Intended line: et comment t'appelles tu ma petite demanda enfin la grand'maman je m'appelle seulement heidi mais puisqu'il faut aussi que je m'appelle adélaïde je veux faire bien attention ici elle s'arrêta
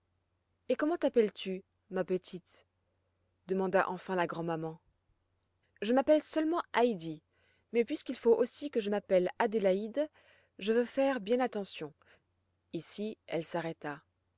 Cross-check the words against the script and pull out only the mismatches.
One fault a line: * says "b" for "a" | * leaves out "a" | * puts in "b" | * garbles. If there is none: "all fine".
all fine